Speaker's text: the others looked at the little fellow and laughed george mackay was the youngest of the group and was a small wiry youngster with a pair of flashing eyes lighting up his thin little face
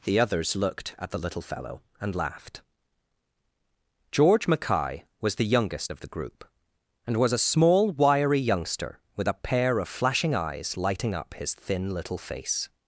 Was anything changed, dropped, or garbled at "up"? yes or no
no